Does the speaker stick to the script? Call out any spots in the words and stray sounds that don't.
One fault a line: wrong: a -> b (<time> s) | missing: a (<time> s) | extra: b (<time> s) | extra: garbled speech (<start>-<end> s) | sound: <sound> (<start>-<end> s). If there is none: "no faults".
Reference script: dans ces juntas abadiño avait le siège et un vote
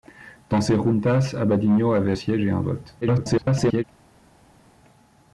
missing: le (2.1 s)
extra: garbled speech (3.0-3.8 s)